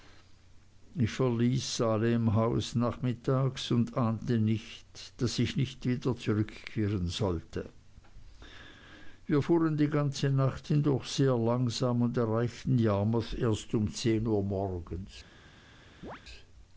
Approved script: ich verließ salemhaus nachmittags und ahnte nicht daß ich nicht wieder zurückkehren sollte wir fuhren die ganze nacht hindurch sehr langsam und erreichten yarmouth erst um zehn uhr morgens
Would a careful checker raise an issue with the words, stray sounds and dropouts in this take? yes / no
yes